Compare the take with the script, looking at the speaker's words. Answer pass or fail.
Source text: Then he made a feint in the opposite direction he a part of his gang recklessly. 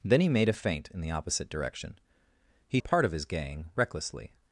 pass